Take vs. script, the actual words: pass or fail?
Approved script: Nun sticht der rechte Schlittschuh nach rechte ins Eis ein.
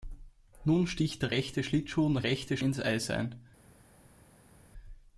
pass